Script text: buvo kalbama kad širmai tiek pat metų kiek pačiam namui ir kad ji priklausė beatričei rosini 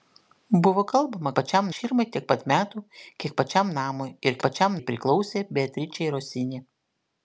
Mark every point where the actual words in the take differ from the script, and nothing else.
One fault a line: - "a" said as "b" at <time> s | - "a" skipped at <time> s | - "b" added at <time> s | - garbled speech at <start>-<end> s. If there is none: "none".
- "kad" said as "pačiam" at 1.4 s
- "kad" said as "pačiam" at 4.5 s